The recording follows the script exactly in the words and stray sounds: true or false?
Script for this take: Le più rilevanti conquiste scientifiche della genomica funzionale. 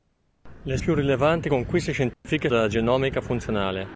false